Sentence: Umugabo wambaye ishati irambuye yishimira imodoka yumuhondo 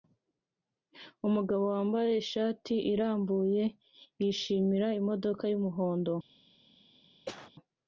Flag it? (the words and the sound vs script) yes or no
yes